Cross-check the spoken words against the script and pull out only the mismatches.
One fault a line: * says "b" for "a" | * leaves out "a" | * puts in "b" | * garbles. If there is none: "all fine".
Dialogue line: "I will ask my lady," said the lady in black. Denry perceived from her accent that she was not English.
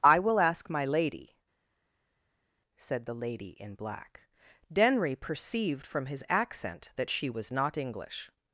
* says "his" for "her"